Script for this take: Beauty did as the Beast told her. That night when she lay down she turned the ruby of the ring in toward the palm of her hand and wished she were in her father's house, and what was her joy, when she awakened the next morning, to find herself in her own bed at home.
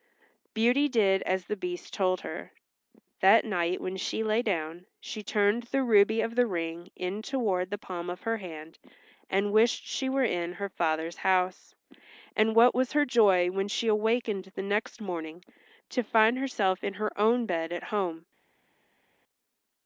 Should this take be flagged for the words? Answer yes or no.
no